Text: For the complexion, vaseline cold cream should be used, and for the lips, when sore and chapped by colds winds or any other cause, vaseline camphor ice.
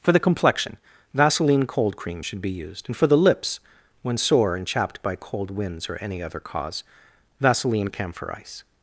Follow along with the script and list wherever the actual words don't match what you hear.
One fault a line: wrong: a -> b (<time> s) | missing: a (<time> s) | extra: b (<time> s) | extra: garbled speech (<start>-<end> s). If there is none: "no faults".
wrong: colds -> cold (5.2 s)